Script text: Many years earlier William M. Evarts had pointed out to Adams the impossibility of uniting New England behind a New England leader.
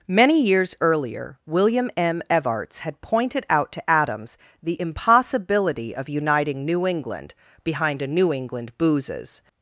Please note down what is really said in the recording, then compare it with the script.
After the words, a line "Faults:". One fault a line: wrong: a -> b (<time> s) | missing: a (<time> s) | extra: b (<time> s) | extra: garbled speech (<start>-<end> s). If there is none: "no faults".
Many years earlier William M. Evarts had pointed out to Adams the impossibility of uniting New England behind a New England boozes.
Faults:
wrong: leader -> boozes (8.8 s)